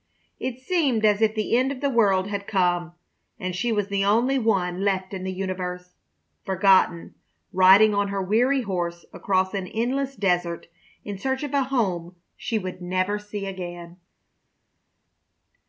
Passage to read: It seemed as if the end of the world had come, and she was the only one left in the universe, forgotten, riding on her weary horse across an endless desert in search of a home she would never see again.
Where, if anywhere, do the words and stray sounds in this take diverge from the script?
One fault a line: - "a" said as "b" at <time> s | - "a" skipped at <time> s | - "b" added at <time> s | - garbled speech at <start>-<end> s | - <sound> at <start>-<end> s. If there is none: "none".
none